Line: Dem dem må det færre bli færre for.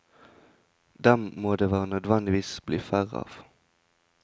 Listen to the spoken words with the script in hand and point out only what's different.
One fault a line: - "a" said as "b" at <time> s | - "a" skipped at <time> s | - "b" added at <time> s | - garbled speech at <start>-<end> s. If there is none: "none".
- "dem" skipped at 1.3 s
- "færre" said as "nødvendigvis" at 1.9 s
- "for" said as "av" at 3.2 s